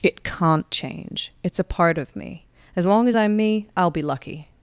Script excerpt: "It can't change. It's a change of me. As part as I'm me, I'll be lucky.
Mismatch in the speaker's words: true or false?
true